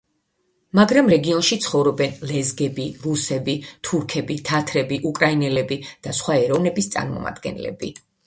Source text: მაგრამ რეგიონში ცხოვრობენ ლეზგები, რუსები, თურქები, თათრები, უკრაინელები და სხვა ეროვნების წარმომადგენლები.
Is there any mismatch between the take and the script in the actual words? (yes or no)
no